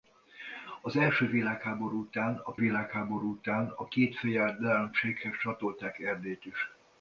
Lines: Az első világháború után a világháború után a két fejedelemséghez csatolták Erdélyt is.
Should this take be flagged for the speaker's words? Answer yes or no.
no